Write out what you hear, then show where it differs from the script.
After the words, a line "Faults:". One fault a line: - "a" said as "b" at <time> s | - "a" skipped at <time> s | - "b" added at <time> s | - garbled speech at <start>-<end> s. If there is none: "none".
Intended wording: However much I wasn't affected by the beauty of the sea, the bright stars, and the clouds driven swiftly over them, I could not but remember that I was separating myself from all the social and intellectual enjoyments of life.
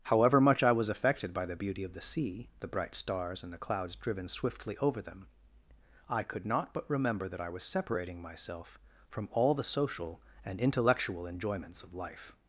However much I was affected by the beauty of the sea, the bright stars, and the clouds driven swiftly over them, I could not but remember that I was separating myself from all the social and intellectual enjoyments of life.
Faults:
- "wasn't" said as "was" at 0.7 s